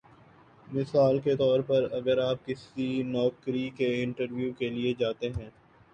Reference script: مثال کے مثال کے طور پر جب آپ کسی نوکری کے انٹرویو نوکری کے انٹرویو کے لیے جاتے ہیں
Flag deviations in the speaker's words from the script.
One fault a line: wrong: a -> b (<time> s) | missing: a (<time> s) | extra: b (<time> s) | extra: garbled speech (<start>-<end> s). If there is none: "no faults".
missing: مثال کے (1.4 s)
wrong: جب -> اگر (1.9 s)
missing: نوکری کے انٹرویو (4.5 s)